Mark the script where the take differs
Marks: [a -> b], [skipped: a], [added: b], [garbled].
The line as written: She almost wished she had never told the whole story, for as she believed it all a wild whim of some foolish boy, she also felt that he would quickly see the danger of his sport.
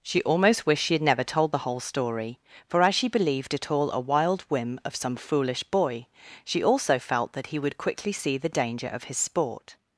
She almost wished she had never told the whole story, for as she believed it all a wild whim of some foolish boy, she also felt that he would quickly see the danger of his sport.